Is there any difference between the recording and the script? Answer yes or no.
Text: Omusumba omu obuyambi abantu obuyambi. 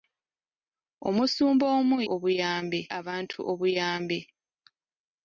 no